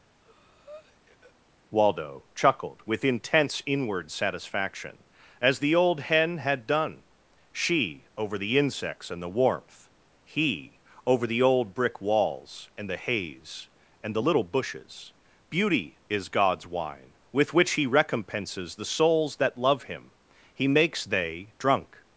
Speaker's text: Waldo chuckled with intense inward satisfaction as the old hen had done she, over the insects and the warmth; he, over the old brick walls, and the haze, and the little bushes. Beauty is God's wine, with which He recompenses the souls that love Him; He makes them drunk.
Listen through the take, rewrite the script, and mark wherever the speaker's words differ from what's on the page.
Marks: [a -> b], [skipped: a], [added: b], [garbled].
Waldo chuckled with intense inward satisfaction as the old hen had done she, over the insects and the warmth; he, over the old brick walls, and the haze, and the little bushes. Beauty is God's wine, with which He recompenses the souls that love Him; He makes [them -> they] drunk.